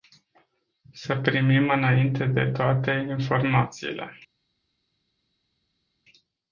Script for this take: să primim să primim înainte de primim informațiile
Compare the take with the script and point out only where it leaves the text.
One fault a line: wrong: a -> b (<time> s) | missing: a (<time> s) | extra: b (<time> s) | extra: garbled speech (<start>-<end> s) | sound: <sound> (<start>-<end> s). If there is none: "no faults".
missing: să primim (1.7 s)
wrong: primim -> toate (2.5 s)